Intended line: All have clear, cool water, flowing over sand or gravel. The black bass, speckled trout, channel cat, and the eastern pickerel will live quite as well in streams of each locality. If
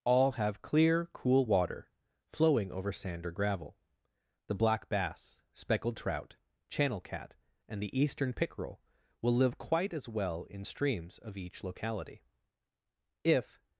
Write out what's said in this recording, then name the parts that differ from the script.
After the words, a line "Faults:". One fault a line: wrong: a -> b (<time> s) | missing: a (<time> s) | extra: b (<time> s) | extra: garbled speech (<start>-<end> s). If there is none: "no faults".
All have clear, cool water, flowing over sand or gravel. The black bass, speckled trout, channel cat, and the eastern pickerel will live quite as well in streams of each locality. If
Faults:
no faults